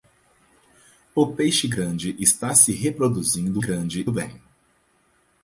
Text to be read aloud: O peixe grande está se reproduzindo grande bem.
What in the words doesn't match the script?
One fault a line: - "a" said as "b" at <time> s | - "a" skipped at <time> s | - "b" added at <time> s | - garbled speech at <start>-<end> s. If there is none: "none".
none